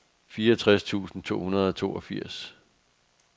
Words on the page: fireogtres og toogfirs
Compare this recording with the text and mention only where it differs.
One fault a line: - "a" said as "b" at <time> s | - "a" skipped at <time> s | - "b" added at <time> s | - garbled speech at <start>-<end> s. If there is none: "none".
- "tusind to hundrede" added at 0.8 s